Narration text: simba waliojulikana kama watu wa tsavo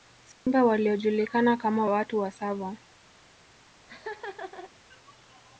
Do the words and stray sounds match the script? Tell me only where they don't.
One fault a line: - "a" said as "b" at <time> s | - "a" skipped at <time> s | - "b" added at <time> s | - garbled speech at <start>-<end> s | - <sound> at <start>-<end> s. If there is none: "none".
- dropout at 0.3-0.5 s
- laugh at 3.9-4.7 s